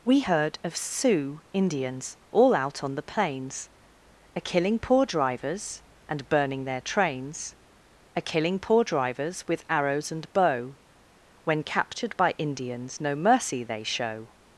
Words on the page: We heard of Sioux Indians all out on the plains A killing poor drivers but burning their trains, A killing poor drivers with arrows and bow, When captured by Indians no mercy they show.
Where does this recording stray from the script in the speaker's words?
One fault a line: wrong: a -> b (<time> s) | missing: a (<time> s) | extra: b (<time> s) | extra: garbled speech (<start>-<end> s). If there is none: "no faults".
wrong: but -> and (6.1 s)